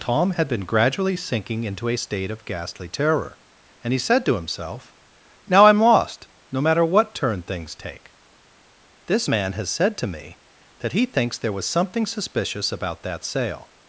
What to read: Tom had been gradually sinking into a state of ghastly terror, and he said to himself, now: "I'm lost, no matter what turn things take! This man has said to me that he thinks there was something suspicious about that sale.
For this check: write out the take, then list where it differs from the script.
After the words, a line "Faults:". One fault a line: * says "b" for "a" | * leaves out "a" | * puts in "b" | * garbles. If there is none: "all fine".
Tom had been gradually sinking into a state of ghastly terror, and he said to himself, now: "I'm lost, no matter what turn things take! This man has said to me that he thinks there was something suspicious about that sale.
Faults:
all fine